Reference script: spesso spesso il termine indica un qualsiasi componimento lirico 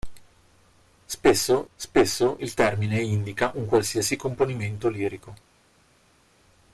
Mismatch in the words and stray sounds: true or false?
false